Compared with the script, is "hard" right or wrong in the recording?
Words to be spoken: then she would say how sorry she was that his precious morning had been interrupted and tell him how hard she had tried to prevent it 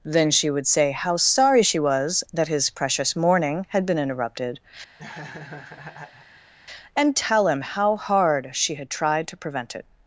right